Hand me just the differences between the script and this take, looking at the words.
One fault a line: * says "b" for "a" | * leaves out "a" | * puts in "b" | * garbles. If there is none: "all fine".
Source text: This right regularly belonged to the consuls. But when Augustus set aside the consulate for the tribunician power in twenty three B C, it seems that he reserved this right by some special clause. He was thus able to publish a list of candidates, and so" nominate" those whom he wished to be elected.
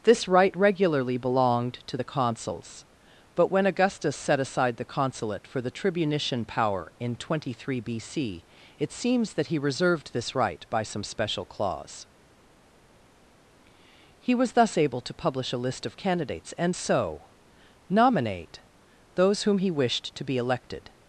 all fine